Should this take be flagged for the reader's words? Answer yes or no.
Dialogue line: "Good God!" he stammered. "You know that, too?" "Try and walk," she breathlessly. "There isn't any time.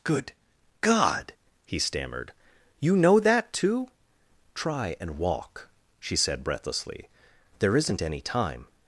yes